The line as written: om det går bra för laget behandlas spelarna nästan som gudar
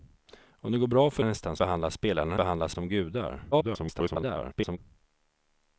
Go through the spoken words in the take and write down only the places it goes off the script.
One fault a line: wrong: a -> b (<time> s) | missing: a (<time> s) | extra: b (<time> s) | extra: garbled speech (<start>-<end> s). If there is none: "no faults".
wrong: laget -> nästan (1.2 s)
wrong: nästan -> behandlas (2.4 s)
extra: garbled speech (3.5-4.8 s)